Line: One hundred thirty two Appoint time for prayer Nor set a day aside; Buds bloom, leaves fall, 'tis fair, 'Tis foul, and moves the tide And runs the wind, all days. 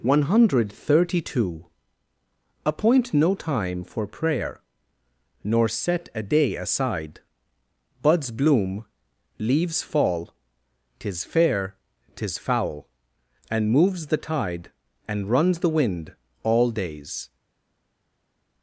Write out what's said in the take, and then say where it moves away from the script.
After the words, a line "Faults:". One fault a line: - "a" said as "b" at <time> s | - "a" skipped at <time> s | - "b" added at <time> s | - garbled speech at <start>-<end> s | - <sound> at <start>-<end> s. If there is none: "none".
One hundred thirty two Appoint no time for prayer Nor set a day aside; Buds bloom, leaves fall, 'tis fair, 'Tis foul, and moves the tide And runs the wind, all days.
Faults:
- "no" added at 3.1 s